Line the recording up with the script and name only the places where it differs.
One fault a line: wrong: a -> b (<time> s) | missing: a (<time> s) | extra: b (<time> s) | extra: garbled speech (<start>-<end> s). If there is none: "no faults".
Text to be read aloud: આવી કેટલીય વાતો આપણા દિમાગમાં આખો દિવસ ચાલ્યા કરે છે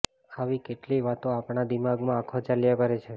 missing: દિવસ (2.4 s)